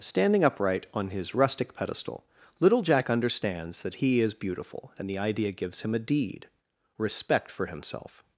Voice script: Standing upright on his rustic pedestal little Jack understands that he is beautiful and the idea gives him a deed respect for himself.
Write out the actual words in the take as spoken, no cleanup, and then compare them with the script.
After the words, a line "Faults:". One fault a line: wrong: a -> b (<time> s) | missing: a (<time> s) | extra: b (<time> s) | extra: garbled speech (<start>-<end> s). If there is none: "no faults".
Standing upright on his rustic pedestal little Jack understands that he is beautiful and the idea gives him a deed respect for himself.
Faults:
no faults